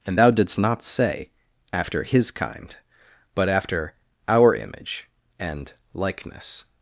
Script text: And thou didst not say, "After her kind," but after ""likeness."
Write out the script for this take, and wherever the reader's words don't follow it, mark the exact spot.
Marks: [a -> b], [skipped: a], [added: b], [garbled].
And thou didst not say, "After [her -> his] kind," but after [added: our image and] ""likeness."